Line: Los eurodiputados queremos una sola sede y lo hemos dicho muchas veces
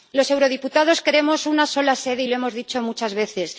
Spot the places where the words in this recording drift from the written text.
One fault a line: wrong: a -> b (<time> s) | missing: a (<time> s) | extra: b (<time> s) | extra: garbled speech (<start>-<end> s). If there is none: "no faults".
no faults